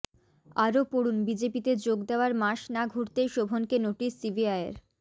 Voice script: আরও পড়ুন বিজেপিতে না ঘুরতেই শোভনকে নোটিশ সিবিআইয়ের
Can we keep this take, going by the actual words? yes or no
no